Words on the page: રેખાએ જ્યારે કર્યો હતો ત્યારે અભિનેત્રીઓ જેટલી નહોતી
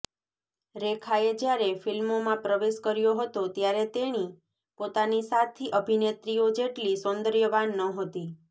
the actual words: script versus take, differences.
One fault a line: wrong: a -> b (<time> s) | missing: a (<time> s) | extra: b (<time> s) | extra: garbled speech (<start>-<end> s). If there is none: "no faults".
extra: ફિલ્મોમાં પ્રવેશ (1.8 s)
extra: તેણી પોતાની સાથી (3.9 s)
extra: સૌંદર્યવાન (7.0 s)